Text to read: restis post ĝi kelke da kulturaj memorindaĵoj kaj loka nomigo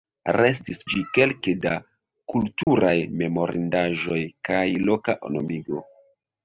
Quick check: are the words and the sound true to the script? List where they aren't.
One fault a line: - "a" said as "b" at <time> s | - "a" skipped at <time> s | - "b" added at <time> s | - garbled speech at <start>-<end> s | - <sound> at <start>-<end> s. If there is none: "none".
- "post" skipped at 0.8 s
- dropout at 2.6-2.7 s